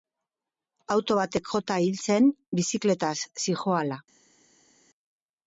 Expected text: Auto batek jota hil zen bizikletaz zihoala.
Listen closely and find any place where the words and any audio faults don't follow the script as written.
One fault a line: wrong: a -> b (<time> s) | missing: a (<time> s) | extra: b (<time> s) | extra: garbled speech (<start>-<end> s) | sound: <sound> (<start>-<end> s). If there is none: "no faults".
no faults